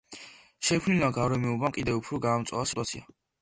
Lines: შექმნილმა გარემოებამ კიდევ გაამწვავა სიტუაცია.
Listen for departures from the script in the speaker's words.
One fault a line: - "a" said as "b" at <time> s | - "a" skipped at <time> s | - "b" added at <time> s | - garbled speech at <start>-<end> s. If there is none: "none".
- "უფრო" added at 2.0 s